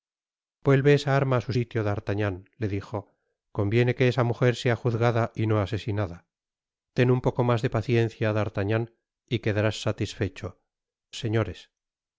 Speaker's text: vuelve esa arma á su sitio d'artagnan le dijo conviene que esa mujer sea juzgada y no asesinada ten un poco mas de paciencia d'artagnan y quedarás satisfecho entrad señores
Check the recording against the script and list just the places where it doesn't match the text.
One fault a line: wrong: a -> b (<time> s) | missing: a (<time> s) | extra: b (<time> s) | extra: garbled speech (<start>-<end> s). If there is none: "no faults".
missing: entrad (10.5 s)